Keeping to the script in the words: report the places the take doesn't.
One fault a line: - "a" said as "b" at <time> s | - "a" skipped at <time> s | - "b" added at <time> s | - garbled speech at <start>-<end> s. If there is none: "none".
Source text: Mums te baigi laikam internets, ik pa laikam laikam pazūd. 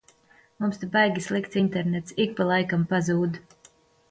- "laikam" said as "slikts" at 1.2 s
- "laikam" skipped at 2.9 s